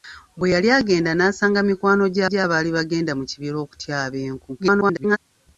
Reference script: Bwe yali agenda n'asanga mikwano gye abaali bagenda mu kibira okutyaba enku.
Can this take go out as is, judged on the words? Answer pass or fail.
fail